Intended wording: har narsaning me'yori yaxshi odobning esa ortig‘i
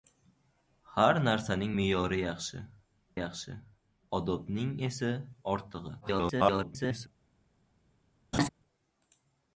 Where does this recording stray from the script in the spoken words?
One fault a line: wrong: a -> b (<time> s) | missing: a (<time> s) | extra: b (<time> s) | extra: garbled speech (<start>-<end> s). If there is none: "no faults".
extra: yaxshi (3.2 s)
extra: garbled speech (6.0-7.1 s)